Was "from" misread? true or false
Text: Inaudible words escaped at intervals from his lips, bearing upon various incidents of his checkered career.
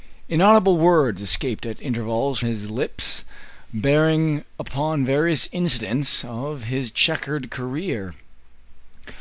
true